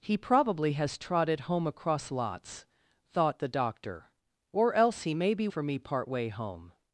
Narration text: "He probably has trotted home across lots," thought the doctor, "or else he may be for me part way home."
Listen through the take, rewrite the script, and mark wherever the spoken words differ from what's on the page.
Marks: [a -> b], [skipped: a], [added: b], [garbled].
"He probably has trotted home across lots," thought the doctor, "or else he may be for me part way home."